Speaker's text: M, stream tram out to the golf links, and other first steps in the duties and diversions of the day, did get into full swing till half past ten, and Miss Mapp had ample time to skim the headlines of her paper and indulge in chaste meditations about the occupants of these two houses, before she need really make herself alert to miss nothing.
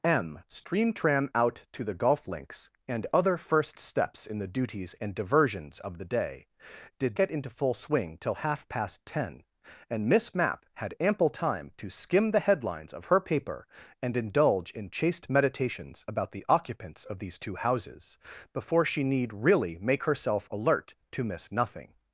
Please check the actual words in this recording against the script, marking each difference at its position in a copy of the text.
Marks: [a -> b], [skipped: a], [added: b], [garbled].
M, stream tram out to the golf links, and other first steps in the duties and diversions of the day, did get into full swing till half past ten, and Miss Mapp had ample time to skim the headlines of her paper and indulge in chaste meditations about the occupants of these two houses, before she need really make herself alert to miss nothing.